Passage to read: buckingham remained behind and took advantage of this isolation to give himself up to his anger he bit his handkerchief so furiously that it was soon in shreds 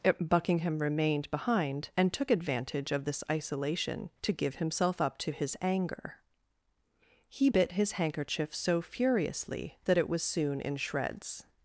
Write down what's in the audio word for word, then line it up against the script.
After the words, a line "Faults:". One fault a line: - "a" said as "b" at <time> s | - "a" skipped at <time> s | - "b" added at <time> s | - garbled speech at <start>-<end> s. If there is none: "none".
buckingham remained behind and took advantage of this isolation to give himself up to his anger he bit his handkerchief so furiously that it was soon in shreds
Faults:
none